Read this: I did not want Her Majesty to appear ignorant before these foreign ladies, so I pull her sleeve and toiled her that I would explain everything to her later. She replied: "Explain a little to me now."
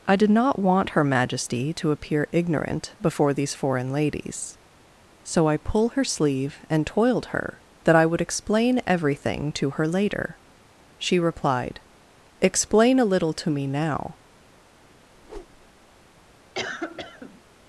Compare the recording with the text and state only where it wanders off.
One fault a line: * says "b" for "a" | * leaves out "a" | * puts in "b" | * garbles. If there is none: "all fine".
all fine